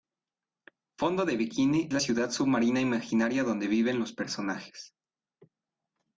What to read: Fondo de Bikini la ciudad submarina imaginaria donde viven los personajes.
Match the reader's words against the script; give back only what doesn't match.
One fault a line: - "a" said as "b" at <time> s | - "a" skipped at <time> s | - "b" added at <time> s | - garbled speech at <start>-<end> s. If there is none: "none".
none